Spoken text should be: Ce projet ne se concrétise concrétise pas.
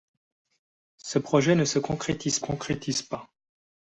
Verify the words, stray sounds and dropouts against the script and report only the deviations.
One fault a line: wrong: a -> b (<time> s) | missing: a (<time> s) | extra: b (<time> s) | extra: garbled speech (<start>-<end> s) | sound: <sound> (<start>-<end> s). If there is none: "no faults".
no faults